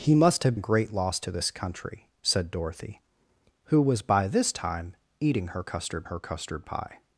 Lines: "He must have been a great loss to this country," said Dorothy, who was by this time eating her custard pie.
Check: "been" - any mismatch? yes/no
yes